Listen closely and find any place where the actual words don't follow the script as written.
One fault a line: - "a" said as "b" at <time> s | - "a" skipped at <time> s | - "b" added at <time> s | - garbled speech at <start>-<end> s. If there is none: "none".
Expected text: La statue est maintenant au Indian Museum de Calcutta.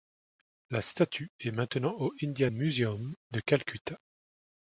none